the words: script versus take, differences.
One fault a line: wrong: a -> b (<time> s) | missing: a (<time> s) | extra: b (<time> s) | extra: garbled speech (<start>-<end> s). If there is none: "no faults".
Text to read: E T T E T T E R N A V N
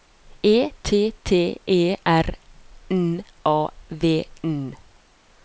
missing: T T E (2.0 s)